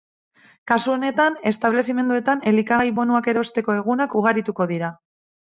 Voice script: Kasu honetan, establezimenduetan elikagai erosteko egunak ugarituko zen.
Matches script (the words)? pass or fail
fail